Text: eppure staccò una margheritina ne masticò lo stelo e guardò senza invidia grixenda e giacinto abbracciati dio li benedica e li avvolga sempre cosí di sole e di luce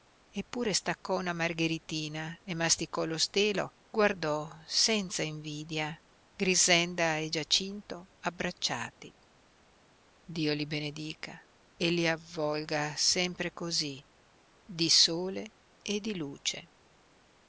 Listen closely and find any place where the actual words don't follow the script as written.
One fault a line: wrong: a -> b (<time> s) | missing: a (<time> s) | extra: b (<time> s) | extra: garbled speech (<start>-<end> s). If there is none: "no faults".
missing: e (3.8 s)